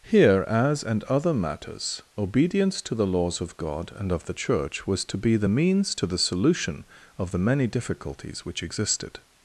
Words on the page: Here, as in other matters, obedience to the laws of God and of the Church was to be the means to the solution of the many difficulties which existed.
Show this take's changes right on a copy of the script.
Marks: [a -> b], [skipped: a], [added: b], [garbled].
Here, as [in -> and] other matters, obedience to the laws of God and of the Church was to be the means to the solution of the many difficulties which existed.